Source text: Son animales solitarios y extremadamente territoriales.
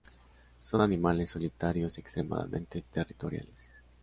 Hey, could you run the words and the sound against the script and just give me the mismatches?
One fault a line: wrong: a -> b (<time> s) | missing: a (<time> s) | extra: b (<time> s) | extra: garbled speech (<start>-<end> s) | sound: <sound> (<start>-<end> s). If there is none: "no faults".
no faults